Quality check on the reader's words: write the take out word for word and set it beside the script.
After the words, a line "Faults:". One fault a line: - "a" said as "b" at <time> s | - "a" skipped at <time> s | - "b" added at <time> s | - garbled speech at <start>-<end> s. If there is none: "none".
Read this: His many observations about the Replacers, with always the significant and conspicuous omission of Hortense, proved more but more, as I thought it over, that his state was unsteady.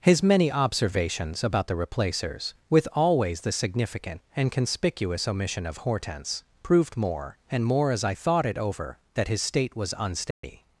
His many observations about the Replacers, with always the significant and conspicuous omission of Hortense, proved more and more, as I thought it over, that his state was unsteady.
Faults:
- "but" said as "and" at 7.5 s